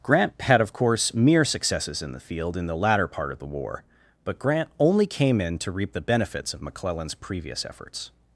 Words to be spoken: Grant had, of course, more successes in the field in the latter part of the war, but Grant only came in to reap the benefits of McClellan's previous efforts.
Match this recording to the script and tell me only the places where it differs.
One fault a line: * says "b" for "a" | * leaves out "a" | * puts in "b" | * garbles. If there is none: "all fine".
* says "mere" for "more"